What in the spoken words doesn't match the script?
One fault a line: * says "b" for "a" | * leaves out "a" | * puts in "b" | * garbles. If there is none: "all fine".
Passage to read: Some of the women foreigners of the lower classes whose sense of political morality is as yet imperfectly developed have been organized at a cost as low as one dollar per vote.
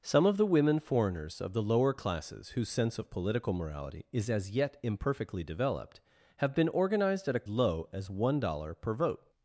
* leaves out "cost as"